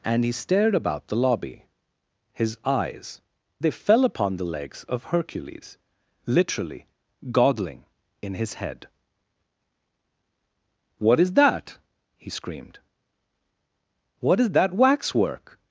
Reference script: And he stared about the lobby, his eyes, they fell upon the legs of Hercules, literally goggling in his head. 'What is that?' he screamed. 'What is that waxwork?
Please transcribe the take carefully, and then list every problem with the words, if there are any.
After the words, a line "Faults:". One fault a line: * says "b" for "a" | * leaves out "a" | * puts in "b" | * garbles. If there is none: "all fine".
And he stared about the lobby, his eyes, they fell upon the legs of Hercules, literally goggling in his head. 'What is that?' he screamed. 'What is that waxwork?
Faults:
all fine